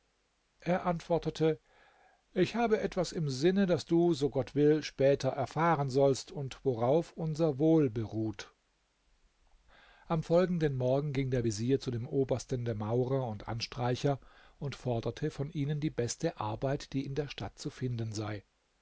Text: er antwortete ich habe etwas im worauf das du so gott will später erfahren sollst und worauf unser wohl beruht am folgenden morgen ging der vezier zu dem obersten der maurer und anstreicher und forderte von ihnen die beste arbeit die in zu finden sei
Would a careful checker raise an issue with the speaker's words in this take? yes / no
yes